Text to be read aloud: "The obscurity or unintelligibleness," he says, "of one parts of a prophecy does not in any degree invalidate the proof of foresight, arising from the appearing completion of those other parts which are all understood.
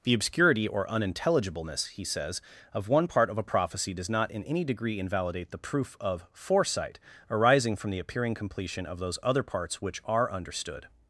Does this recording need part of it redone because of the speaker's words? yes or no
yes